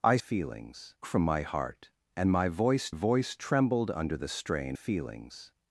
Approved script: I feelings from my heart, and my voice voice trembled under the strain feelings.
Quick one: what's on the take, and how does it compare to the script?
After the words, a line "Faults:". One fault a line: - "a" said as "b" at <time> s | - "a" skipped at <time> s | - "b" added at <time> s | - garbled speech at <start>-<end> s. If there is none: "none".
I feelings from my heart, and my voice voice trembled under the strain feelings.
Faults:
none